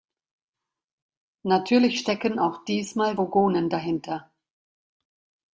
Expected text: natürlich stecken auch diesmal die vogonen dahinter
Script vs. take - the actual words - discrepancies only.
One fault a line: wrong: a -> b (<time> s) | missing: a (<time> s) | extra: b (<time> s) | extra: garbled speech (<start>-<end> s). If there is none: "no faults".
missing: die (3.1 s)